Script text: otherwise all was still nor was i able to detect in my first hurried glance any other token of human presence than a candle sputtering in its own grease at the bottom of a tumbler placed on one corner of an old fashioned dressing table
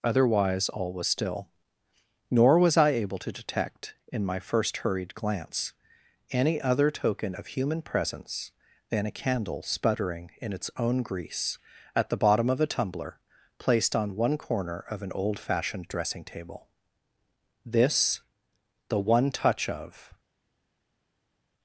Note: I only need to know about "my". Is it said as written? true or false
true